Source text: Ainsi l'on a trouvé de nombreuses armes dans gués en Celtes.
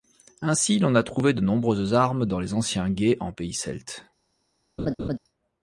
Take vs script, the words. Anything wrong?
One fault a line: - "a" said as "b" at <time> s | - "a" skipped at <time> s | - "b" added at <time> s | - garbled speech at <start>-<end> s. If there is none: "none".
- "les anciens" added at 2.4 s
- "pays" added at 3.3 s